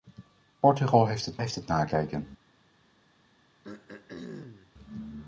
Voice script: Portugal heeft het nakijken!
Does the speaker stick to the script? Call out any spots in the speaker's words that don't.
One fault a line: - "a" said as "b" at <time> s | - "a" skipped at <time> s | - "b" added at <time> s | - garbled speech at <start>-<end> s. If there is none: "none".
- "heeft het" added at 1.4 s